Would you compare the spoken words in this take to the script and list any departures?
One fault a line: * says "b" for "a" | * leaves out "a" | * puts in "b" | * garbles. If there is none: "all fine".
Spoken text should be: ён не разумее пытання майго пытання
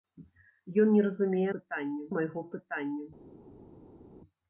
all fine